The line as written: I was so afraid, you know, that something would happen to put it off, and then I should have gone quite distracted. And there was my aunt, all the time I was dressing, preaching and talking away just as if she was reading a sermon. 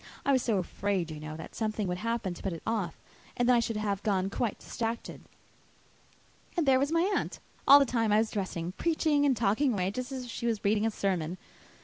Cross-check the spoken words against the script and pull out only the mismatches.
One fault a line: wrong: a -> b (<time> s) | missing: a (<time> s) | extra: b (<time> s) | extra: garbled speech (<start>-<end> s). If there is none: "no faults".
no faults